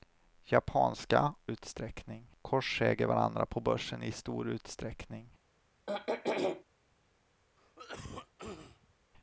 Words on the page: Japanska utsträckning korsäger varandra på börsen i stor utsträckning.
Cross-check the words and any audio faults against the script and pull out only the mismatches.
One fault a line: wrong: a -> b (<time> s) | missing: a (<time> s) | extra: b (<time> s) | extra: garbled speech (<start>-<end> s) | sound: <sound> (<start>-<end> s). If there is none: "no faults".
sound: throat clearing (5.9-6.6 s)
sound: cough (7.6-8.9 s)